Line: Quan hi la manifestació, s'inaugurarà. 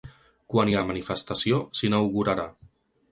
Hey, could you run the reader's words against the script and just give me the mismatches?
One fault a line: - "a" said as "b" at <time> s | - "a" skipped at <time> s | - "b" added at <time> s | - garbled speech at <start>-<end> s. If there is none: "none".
none